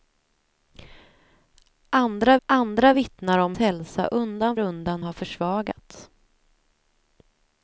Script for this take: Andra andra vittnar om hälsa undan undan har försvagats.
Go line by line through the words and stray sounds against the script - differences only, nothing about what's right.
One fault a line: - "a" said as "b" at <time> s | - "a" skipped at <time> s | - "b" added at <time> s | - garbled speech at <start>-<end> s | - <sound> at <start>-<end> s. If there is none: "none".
none